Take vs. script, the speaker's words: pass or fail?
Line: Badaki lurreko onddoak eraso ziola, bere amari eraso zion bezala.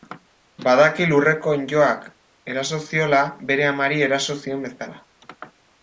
pass